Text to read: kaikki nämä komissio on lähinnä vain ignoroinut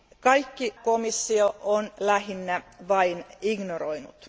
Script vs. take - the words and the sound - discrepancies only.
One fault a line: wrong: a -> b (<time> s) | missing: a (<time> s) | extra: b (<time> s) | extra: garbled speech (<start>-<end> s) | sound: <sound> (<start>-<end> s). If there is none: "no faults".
missing: nämä (0.7 s)